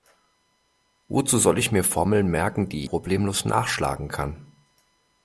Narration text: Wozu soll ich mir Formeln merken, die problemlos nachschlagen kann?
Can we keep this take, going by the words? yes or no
yes